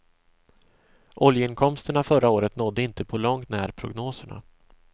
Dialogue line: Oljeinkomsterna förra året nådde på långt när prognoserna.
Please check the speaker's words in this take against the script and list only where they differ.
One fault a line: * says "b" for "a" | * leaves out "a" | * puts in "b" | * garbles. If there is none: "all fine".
* puts in "inte"